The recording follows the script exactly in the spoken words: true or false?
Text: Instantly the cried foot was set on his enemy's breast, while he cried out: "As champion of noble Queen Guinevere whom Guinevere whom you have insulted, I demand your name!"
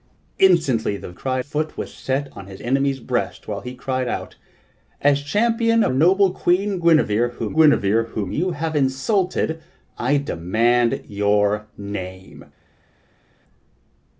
true